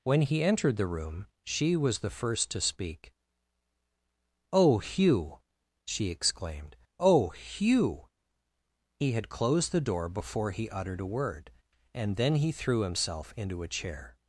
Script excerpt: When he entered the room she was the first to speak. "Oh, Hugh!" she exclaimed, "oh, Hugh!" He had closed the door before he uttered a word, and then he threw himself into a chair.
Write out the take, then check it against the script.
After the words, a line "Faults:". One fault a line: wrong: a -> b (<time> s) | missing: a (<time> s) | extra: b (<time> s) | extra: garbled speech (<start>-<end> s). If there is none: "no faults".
When he entered the room she was the first to speak. "Oh, Hugh!" she exclaimed, "oh, Hugh!" He had closed the door before he uttered a word, and then he threw himself into a chair.
Faults:
no faults